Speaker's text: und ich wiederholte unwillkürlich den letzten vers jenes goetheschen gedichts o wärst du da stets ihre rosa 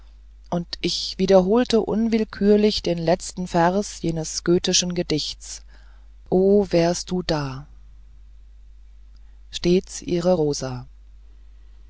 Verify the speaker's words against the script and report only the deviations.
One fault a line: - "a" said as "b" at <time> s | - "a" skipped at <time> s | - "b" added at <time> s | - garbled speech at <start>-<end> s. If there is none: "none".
none